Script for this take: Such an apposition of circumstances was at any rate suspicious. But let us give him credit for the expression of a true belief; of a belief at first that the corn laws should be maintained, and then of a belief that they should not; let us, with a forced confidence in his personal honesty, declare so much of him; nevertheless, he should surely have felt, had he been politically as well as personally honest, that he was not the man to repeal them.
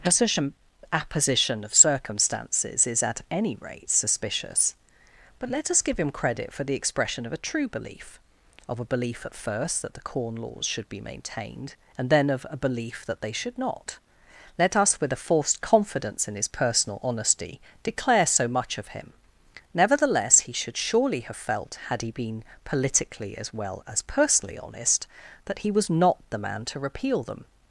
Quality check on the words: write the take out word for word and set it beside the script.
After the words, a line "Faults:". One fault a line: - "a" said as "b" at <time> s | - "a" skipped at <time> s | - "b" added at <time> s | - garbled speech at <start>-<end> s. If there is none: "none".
Such an apposition of circumstances is at any rate suspicious. But let us give him credit for the expression of a true belief; of a belief at first that the corn laws should be maintained, and then of a belief that they should not; let us, with a forced confidence in his personal honesty, declare so much of him; nevertheless, he should surely have felt, had he been politically as well as personally honest, that he was not the man to repeal them.
Faults:
- "was" said as "is" at 2.9 s